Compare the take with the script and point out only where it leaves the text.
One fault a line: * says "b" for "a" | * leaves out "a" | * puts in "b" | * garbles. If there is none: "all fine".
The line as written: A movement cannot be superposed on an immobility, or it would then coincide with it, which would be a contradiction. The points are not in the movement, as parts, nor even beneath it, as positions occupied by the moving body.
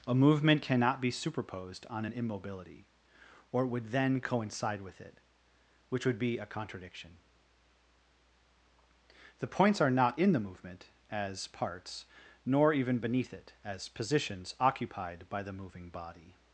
all fine